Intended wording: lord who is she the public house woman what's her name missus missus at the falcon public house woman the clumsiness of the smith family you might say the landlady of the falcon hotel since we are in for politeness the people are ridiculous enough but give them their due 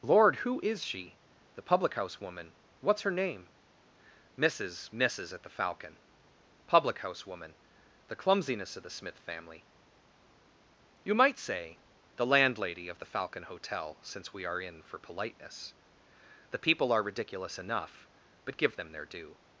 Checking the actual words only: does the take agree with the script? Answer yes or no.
yes